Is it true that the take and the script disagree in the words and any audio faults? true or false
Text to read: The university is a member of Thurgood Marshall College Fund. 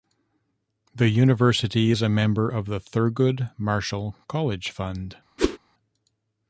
true